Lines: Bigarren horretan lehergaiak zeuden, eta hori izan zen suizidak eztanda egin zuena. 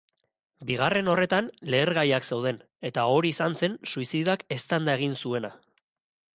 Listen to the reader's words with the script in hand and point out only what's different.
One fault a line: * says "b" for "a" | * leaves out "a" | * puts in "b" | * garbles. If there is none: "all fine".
all fine